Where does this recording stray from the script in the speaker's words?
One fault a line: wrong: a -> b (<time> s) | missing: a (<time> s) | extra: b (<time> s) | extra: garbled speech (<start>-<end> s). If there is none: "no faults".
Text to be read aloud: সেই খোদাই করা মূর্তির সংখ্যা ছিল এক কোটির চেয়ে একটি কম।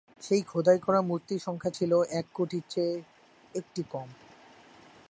no faults